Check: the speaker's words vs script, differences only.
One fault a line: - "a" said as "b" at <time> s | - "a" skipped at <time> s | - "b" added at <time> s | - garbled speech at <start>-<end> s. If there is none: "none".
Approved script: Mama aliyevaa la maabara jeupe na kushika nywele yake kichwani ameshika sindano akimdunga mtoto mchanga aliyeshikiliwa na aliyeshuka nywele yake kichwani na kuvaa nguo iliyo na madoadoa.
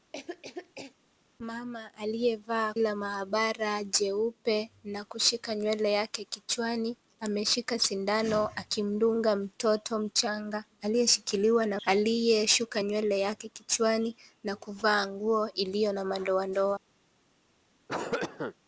none